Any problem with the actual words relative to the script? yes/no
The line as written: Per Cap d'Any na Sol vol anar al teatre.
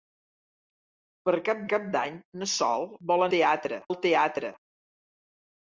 yes